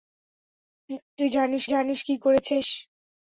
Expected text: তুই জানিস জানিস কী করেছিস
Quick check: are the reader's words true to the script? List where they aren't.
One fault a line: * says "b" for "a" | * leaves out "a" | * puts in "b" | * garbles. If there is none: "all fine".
all fine